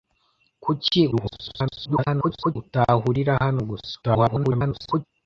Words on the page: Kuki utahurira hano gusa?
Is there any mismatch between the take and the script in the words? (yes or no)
yes